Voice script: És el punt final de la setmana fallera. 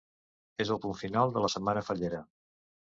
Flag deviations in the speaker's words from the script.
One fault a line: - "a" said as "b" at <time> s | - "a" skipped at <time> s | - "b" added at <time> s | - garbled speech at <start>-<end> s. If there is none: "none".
none